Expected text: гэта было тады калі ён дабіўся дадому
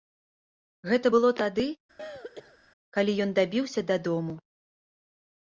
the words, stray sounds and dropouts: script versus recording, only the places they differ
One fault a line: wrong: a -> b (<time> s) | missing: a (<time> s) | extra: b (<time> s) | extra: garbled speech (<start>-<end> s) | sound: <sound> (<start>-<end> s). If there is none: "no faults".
sound: throat clearing (2.0-2.6 s)